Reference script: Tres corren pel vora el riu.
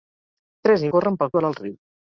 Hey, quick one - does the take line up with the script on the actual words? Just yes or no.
yes